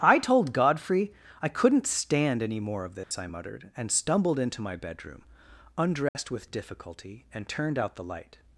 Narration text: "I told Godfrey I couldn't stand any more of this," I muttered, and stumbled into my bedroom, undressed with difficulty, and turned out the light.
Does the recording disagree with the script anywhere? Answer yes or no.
no